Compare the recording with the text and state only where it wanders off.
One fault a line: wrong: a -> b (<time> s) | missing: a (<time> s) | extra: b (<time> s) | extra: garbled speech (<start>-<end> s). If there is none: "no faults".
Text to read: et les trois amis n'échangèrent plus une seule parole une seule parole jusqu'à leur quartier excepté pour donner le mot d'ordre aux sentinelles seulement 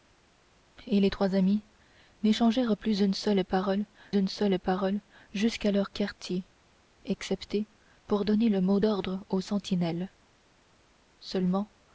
no faults